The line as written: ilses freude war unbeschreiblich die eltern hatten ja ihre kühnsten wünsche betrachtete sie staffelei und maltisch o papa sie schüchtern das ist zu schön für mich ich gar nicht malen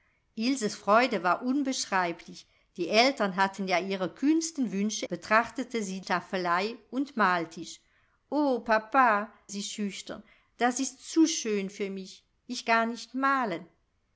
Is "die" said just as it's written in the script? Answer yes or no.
yes